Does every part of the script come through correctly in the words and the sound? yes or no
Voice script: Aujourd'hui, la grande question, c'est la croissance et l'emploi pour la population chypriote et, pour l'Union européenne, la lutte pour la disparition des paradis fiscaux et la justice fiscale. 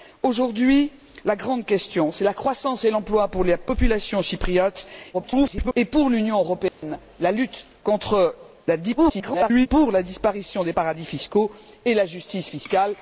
no